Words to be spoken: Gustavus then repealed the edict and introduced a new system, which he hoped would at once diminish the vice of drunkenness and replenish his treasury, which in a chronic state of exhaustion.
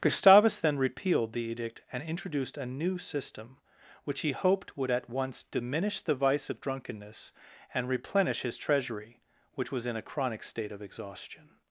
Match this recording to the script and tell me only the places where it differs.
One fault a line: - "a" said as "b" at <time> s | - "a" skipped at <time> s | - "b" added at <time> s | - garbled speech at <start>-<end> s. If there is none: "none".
- "was" added at 9.7 s